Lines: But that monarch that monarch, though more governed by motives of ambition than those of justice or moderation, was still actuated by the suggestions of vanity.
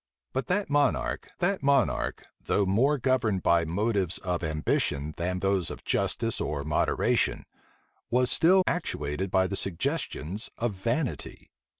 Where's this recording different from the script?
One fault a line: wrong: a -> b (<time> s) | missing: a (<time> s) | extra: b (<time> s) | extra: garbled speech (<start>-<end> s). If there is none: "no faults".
no faults